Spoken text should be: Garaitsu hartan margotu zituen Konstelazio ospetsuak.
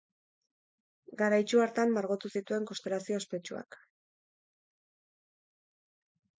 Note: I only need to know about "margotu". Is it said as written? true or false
true